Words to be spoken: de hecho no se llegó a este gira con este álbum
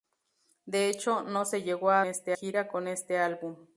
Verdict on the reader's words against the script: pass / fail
pass